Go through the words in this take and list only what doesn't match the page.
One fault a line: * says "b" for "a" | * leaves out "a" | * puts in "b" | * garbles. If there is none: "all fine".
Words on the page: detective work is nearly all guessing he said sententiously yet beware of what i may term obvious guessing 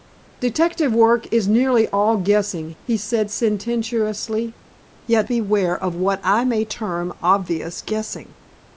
all fine